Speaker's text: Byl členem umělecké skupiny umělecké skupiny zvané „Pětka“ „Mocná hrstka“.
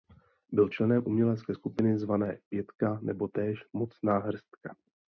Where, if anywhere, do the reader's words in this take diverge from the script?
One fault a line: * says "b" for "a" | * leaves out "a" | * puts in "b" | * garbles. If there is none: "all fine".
* says "zvané Pětka nebo též" for "umělecké skupiny zvané Pětka"